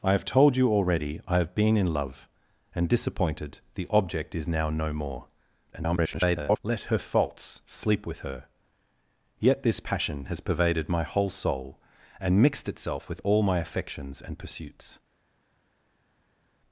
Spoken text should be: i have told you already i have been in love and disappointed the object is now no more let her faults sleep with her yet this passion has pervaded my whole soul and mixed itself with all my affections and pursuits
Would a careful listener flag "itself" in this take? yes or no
no